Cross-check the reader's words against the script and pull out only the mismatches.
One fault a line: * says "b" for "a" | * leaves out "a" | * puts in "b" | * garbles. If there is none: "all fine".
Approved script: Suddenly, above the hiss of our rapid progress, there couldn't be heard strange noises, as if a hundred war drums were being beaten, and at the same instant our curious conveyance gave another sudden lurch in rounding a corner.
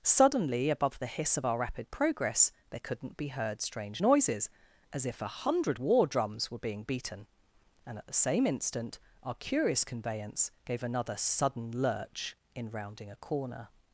all fine